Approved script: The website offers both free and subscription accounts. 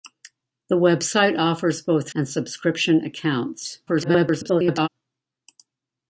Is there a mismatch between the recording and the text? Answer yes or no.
yes